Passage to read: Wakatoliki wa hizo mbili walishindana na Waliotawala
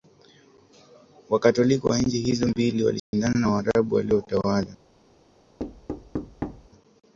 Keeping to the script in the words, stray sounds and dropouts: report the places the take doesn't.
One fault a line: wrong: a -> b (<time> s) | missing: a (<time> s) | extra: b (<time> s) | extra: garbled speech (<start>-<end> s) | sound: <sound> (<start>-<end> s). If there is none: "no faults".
extra: nchi (2.0 s)
sound: dropout (3.0-3.1 s)
extra: Waarabu (3.4 s)
sound: thud (5.6-6.7 s)